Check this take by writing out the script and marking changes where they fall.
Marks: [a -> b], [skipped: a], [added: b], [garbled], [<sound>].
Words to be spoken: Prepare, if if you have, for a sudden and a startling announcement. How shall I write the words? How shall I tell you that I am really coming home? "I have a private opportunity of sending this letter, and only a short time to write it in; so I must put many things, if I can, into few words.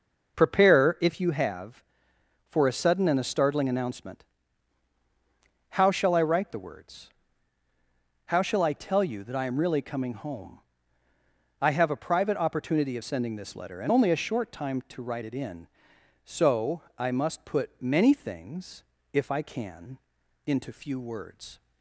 Prepare, if [skipped: if] you have, for a sudden and a startling announcement. How shall I write the words? How shall I tell you that I am really coming home? "I have a private opportunity of sending this letter, and only a short time to write it in; so I must put many things, if I can, into few words.